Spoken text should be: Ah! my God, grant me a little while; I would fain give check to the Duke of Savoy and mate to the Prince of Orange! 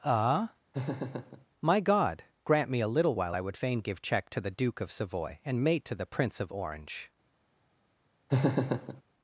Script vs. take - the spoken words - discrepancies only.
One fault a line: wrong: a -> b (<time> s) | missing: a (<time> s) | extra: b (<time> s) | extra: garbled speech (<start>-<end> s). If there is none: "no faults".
no faults